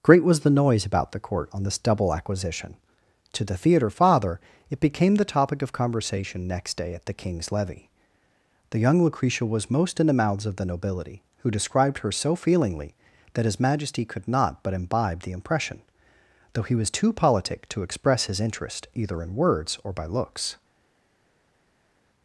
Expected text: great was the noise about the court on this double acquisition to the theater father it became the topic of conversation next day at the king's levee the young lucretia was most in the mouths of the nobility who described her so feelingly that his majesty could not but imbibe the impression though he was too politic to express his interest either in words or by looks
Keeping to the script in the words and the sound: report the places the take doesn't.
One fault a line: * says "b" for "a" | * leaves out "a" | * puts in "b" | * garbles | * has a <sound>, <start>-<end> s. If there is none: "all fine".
all fine